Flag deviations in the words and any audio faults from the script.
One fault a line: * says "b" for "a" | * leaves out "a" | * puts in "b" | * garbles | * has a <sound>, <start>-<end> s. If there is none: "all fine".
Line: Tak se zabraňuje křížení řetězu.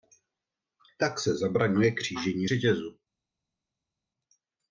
all fine